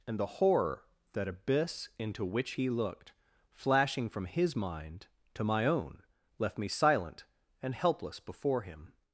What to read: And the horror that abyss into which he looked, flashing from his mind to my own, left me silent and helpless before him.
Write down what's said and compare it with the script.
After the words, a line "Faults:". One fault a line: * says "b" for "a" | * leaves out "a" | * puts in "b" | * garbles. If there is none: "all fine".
And the horror that abyss into which he looked, flashing from his mind to my own, left me silent and helpless before him.
Faults:
all fine